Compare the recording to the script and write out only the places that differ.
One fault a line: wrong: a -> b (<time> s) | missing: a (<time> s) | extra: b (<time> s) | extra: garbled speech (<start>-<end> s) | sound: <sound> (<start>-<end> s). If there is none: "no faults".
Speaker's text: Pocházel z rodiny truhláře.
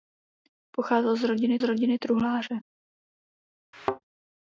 extra: rodiny (1.6 s)
sound: thud (3.7-4.0 s)